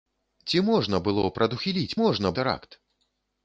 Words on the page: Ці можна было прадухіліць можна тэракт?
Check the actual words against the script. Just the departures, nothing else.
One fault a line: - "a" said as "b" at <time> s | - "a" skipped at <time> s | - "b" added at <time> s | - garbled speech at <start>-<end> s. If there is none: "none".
none